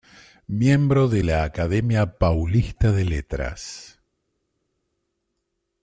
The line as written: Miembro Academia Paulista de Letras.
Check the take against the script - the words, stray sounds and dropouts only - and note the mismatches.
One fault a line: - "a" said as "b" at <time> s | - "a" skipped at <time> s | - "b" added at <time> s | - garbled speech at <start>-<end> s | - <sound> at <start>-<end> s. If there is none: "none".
- "de la" added at 1.1 s